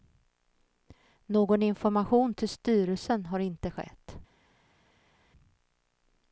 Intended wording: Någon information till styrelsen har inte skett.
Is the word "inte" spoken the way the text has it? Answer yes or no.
yes